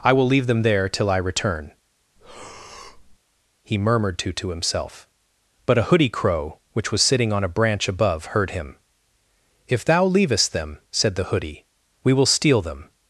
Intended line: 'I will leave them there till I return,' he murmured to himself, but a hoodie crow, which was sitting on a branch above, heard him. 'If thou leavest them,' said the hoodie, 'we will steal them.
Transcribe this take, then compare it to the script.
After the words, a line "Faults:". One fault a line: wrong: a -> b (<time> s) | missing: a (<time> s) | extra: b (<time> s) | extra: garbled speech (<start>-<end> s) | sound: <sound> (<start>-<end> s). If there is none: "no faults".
'I will leave them there till I return,' he murmured to to himself, but a hoodie crow, which was sitting on a branch above, heard him. 'If thou leavest them,' said the hoodie, 'we will steal them.
Faults:
sound: breath (2.2-3.2 s)
extra: to (4.3 s)